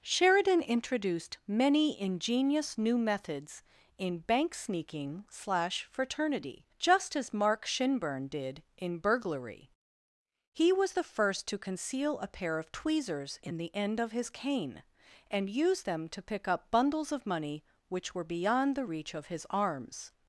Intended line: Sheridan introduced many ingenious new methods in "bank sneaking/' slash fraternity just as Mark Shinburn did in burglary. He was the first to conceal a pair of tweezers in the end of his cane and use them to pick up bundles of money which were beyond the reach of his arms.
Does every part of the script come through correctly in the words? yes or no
yes